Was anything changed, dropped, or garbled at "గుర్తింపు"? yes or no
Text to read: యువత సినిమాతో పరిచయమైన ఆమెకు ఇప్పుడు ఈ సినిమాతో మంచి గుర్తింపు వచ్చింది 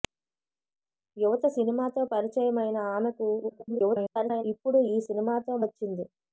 yes